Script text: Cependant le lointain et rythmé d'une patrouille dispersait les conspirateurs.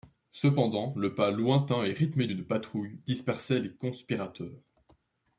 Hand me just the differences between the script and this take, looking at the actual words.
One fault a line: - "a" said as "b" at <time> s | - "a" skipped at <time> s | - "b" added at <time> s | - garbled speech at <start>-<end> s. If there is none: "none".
- "pas" added at 1.1 s